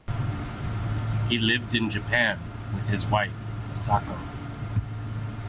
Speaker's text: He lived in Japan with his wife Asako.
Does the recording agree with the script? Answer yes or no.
yes